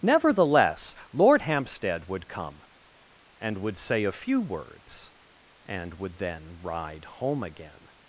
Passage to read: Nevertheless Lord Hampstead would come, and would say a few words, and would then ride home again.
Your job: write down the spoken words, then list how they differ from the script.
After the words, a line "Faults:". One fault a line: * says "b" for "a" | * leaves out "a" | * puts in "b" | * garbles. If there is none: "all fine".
Nevertheless Lord Hampstead would come, and would say a few words, and would then ride home again.
Faults:
all fine